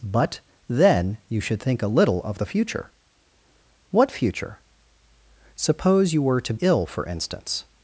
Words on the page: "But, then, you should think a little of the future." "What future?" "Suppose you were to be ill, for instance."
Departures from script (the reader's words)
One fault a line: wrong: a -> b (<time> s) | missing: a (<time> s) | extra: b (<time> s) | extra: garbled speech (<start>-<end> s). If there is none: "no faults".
missing: be (6.5 s)